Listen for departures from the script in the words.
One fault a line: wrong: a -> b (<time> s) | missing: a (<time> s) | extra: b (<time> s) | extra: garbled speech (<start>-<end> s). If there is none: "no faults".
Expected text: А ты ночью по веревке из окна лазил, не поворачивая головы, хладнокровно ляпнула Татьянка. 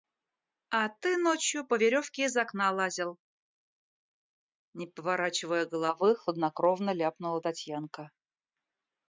no faults